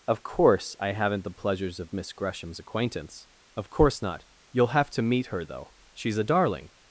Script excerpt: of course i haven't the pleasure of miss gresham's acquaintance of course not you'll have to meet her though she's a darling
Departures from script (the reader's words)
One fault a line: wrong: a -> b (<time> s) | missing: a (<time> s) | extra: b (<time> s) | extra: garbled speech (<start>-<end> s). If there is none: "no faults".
wrong: pleasure -> pleasures (1.3 s)